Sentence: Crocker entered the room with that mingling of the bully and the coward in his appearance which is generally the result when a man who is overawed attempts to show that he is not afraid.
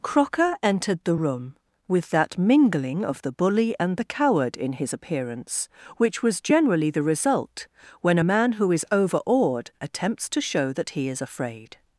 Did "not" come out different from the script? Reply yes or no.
yes